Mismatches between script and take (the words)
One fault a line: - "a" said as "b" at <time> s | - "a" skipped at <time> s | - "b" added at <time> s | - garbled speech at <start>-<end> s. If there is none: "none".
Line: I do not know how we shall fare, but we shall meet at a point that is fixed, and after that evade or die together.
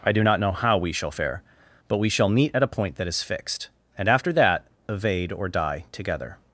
none